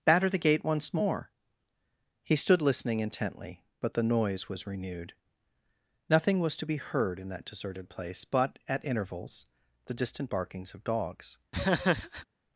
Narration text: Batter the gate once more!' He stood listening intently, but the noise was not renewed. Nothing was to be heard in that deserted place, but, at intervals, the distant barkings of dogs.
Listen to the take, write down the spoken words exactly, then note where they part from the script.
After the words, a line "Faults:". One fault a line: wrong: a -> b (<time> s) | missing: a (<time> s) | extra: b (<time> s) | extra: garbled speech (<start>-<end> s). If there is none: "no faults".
Batter the gate once more!' He stood listening intently, but the noise was renewed. Nothing was to be heard in that deserted place, but, at intervals, the distant barkings of dogs.
Faults:
missing: not (4.7 s)